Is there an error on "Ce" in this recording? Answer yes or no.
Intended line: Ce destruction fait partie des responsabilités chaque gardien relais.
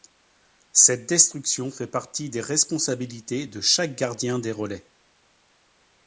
yes